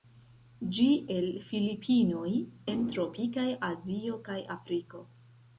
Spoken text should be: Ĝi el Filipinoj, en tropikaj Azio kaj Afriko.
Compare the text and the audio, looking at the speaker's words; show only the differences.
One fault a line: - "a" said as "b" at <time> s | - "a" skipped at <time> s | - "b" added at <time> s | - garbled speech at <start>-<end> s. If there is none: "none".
none